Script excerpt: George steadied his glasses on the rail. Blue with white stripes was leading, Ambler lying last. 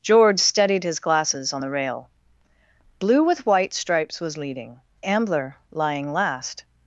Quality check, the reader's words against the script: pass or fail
pass